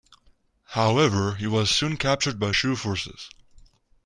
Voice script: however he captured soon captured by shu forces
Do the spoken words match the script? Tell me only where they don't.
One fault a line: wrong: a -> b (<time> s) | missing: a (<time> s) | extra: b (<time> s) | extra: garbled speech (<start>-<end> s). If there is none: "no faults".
wrong: captured -> was (1.4 s)